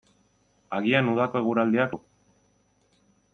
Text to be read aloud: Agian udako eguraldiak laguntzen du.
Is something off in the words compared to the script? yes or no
yes